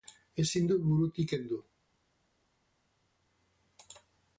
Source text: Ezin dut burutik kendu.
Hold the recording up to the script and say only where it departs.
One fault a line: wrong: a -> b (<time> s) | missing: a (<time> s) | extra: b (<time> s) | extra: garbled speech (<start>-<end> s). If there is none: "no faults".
no faults